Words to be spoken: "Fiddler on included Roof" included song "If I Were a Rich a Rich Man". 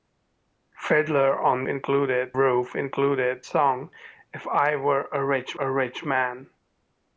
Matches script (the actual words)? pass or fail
pass